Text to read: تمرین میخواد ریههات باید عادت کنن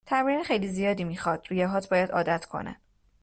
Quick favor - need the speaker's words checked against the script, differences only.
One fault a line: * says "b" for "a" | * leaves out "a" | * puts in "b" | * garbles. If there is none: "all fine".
* puts in "خیلی زیادی"